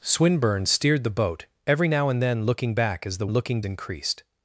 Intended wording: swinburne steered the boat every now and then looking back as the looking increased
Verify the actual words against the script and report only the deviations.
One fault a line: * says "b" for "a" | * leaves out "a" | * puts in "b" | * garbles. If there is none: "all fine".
all fine